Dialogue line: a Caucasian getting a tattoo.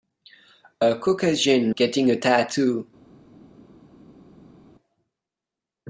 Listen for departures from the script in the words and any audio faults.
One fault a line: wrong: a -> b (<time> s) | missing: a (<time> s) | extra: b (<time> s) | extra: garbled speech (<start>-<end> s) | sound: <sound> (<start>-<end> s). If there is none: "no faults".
no faults